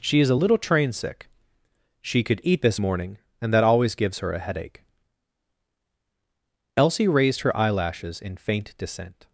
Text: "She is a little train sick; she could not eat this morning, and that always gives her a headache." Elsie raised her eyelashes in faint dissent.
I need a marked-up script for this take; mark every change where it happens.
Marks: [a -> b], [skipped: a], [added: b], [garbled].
"She is a little train sick; she could [skipped: not] eat this morning, and that always gives her a headache." Elsie raised her eyelashes in faint dissent.